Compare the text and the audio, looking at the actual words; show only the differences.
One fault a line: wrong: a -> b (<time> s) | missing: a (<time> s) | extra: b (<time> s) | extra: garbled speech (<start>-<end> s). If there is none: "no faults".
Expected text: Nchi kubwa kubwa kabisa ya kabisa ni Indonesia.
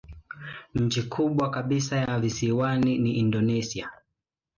missing: kubwa (1.5 s)
wrong: kabisa -> visiwani (2.2 s)